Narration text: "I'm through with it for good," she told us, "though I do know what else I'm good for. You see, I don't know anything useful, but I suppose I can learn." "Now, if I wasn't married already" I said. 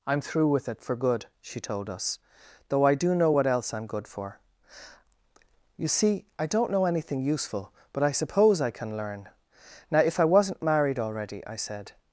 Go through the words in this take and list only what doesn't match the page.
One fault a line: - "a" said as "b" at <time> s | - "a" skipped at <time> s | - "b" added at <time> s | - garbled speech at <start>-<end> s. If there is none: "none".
none